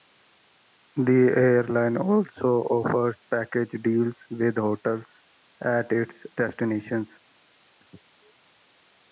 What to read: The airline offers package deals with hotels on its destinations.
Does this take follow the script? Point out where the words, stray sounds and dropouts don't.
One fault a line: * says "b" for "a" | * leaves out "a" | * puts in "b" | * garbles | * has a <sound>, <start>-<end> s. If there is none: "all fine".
* puts in "also"
* says "at" for "on"